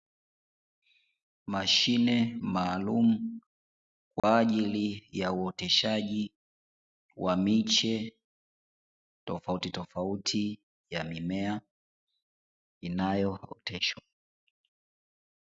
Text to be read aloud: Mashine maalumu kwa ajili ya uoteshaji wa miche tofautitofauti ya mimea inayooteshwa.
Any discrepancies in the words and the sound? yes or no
yes